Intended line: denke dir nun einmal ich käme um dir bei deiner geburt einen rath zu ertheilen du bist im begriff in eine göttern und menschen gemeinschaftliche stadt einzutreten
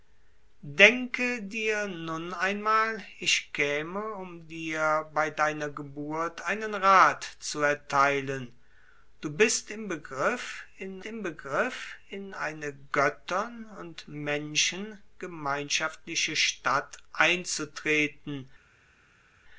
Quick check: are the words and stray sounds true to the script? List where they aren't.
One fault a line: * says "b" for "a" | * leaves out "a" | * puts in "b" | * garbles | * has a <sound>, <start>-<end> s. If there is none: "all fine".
* puts in "im begriff in"